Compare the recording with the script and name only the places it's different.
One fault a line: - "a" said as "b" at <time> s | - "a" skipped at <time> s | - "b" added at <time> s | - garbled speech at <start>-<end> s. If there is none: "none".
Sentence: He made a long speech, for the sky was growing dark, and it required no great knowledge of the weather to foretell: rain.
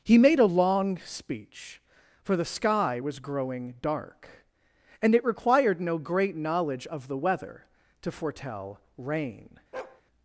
none